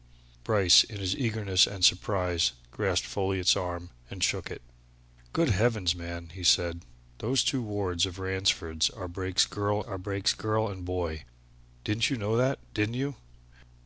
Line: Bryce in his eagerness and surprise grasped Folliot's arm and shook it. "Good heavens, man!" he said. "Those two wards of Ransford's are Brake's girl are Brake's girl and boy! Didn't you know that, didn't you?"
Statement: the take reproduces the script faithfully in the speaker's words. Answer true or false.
true